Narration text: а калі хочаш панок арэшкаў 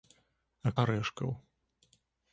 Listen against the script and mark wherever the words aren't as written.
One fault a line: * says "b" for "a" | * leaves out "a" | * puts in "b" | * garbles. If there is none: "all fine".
* leaves out "калі хочаш панок"